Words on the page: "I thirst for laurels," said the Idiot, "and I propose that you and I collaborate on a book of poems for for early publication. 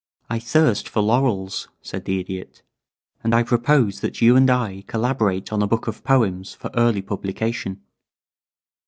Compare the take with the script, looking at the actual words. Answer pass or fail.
fail